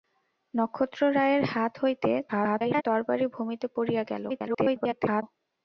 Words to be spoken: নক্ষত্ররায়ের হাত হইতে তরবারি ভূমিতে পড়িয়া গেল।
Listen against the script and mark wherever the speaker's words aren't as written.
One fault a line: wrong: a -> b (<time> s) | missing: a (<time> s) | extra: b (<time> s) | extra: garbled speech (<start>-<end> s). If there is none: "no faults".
extra: garbled speech (2.3-2.8 s)
extra: garbled speech (4.3-5.2 s)